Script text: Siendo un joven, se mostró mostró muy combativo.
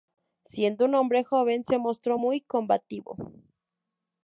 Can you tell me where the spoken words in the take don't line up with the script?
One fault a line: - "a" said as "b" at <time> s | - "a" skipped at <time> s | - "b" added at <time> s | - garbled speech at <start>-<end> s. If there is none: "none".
- "hombre" added at 0.9 s
- "mostró" skipped at 2.2 s